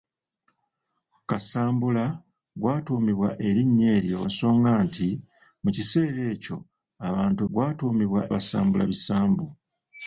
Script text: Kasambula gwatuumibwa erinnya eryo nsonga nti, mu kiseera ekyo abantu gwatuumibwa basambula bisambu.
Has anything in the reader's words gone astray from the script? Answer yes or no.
no